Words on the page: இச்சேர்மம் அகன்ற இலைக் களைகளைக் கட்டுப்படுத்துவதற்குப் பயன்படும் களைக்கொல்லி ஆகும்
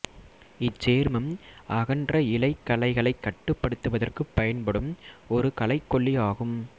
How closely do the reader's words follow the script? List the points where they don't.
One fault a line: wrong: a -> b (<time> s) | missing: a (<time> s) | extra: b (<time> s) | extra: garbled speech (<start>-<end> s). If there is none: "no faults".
extra: ஒரு (5.3 s)